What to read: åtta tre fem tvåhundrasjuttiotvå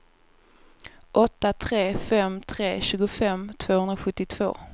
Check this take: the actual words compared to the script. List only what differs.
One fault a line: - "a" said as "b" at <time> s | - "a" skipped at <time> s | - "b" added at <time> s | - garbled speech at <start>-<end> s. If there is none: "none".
- "tre tjugofem" added at 2.4 s